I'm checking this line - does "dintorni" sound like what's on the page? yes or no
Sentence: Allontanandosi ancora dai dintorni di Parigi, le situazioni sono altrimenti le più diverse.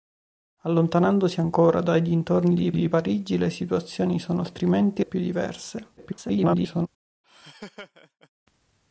yes